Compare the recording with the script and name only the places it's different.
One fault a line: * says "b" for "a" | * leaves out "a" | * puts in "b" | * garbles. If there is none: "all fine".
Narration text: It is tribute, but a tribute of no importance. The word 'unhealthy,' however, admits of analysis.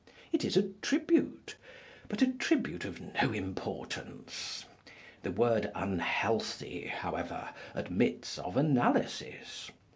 * puts in "a"